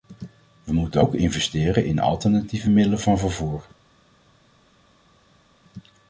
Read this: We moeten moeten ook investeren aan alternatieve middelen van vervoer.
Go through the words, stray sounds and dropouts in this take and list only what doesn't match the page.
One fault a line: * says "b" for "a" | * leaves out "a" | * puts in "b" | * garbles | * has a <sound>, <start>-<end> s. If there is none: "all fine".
* leaves out "moeten"
* says "in" for "aan"